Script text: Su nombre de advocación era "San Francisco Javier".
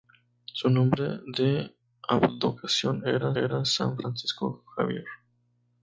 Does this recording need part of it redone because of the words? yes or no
yes